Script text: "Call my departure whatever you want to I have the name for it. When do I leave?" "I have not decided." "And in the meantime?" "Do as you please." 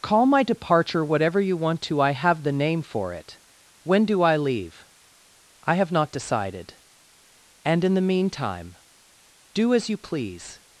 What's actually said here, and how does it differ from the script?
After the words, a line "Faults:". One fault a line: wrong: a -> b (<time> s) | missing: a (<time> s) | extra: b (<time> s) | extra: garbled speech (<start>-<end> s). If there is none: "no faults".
"Call my departure whatever you want to I have the name for it. When do I leave?" "I have not decided." "And in the meantime?" "Do as you please."
Faults:
no faults